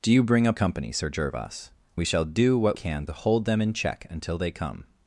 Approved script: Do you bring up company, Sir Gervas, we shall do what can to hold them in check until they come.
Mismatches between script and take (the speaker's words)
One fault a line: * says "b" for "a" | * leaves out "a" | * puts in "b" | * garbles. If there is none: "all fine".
all fine